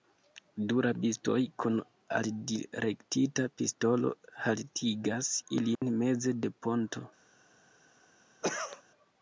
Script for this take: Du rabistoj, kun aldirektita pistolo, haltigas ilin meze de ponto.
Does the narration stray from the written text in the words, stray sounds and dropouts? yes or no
yes